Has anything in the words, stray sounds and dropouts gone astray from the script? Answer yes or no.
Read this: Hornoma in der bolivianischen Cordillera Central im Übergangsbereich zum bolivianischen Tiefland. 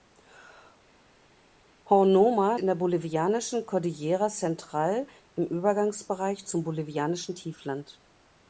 no